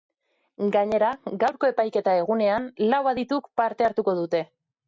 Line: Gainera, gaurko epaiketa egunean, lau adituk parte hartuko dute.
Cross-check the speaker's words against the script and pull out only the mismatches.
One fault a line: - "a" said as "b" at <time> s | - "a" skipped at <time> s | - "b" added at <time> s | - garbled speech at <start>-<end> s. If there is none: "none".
none